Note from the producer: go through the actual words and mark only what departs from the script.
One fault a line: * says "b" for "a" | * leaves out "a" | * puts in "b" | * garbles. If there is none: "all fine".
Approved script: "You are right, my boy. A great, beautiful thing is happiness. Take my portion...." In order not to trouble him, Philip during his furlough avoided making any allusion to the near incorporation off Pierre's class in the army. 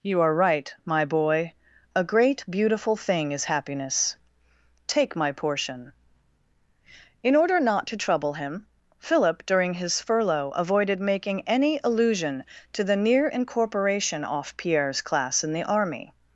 all fine